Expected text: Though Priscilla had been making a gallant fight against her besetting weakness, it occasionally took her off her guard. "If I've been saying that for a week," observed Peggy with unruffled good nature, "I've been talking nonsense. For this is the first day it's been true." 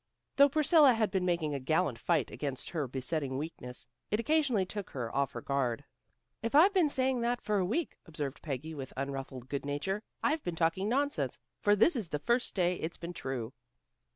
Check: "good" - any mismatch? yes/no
no